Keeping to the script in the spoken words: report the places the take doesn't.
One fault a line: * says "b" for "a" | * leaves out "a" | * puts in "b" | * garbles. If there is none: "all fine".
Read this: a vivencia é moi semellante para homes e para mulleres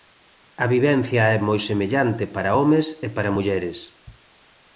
all fine